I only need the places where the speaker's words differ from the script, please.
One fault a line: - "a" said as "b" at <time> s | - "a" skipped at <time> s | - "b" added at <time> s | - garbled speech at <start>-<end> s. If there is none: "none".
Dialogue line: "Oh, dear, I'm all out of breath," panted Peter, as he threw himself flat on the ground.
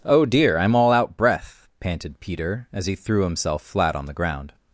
- "of" skipped at 1.2 s